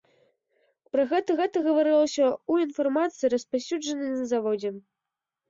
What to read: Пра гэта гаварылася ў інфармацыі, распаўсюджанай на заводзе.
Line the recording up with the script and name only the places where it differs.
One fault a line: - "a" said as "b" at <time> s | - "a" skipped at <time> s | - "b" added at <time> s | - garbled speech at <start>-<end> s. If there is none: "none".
- "гэта" added at 1.4 s